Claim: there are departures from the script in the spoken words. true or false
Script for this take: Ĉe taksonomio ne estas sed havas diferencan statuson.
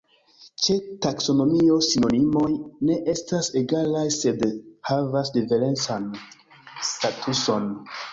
true